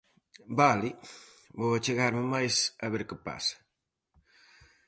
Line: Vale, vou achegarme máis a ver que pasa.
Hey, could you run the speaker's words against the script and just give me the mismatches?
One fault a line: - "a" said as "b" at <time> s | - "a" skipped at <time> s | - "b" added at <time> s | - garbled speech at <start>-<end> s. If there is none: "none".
none